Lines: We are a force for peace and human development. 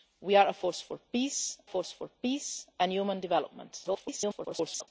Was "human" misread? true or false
false